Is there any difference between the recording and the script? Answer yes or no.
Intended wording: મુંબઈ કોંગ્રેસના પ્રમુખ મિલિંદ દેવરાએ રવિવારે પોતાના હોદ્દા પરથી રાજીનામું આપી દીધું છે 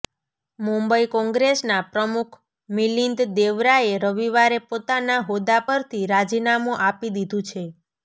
no